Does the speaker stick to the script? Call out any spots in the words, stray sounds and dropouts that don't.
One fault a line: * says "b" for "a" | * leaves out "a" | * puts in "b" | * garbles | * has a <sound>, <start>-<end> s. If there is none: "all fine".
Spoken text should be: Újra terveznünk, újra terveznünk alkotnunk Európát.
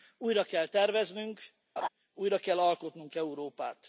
* puts in "kell"
* has a laugh, 1.8-1.9 s
* says "kell" for "terveznünk"